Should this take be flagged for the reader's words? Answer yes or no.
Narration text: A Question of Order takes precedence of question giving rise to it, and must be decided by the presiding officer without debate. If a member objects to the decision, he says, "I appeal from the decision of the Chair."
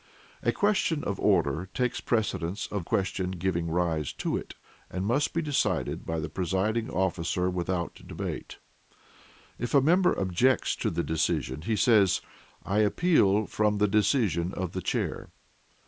no